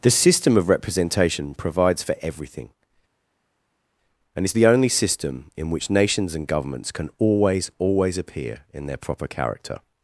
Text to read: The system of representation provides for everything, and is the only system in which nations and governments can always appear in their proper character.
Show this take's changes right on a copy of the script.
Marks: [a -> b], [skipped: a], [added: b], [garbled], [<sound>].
The system of representation provides for everything, and is the only system in which nations and governments can always [added: always] appear in their proper character.